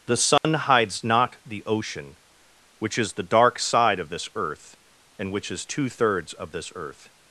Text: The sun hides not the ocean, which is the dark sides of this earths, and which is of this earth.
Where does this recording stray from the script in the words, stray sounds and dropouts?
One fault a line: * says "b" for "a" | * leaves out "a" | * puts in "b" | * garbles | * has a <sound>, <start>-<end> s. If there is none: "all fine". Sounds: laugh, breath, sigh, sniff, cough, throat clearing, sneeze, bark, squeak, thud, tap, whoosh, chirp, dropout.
* has a dropout, 0.4-0.4 s
* says "side" for "sides"
* says "earth" for "earths"
* puts in "two thirds"